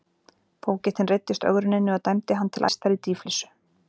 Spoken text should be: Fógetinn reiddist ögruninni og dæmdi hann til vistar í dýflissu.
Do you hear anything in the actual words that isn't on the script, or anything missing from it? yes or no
no